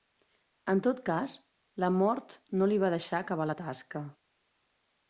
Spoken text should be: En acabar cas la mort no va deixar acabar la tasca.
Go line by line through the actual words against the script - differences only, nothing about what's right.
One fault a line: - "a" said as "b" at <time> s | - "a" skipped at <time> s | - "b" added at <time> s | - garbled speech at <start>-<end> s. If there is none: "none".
- "acabar" said as "tot" at 0.9 s
- "li" added at 2.7 s